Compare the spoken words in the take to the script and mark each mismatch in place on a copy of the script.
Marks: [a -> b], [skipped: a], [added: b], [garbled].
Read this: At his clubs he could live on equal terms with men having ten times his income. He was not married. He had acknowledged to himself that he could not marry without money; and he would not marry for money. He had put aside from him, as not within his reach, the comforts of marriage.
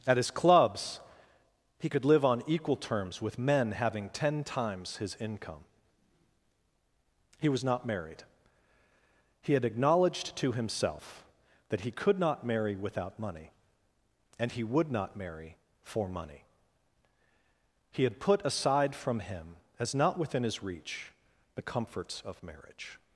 At his clubs he could live on equal terms with men having ten times his income. He was not married. He had acknowledged to himself that he could not marry without money; and he would not marry for money. He had put aside from him, as not within his reach, the comforts of marriage.